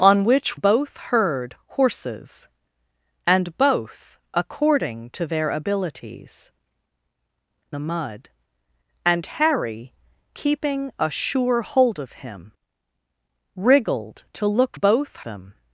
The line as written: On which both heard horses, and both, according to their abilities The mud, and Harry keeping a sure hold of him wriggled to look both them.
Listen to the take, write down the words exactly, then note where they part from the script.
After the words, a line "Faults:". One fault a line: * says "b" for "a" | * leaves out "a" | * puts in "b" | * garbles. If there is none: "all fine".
On which both heard horses, and both, according to their abilities The mud, and Harry keeping a sure hold of him wriggled to look both them.
Faults:
all fine